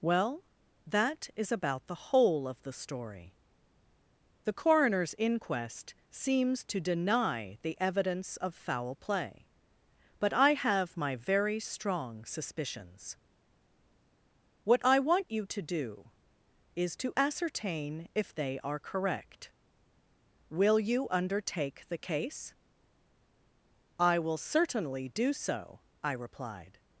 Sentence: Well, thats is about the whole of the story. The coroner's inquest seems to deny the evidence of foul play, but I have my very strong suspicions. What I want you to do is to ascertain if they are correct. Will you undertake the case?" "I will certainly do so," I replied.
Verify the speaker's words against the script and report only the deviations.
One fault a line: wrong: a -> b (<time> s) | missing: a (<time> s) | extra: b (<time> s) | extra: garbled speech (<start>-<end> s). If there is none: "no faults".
wrong: thats -> that (0.9 s)